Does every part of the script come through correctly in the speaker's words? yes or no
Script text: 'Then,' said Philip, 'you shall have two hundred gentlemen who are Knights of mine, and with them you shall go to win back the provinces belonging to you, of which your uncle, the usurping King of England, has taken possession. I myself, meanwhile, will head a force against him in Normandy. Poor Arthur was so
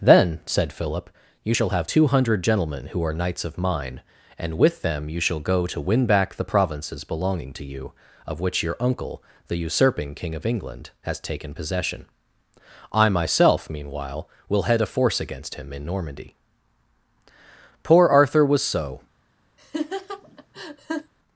yes